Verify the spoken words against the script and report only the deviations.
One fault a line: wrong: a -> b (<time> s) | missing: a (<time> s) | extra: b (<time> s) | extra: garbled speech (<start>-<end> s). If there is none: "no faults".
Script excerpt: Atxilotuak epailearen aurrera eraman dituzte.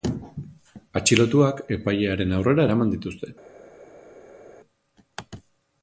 no faults